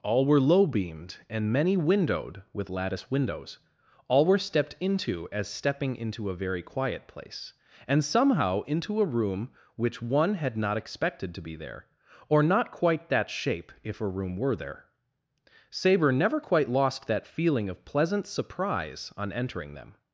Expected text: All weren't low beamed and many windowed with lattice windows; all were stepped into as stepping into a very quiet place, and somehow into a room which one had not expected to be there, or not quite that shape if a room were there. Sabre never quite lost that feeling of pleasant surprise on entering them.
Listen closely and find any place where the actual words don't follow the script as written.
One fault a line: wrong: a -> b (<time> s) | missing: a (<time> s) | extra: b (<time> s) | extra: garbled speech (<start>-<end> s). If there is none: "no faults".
wrong: weren't -> were (0.2 s)